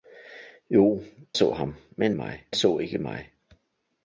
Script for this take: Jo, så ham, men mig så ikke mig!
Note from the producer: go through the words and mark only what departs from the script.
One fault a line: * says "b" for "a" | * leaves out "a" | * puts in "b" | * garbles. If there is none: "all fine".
all fine